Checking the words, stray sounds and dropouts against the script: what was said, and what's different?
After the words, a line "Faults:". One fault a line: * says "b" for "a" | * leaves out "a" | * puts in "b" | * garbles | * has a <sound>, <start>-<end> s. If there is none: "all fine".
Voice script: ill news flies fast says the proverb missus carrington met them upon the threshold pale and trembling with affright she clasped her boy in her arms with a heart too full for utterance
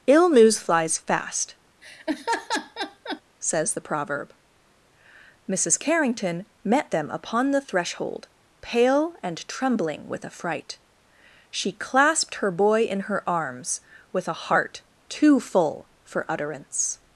ill news flies fast says the proverb missus carrington met them upon the threshold pale and trembling with affright she clasped her boy in her arms with a heart too full for utterance
Faults:
* has a laugh, 1.8-3.2 s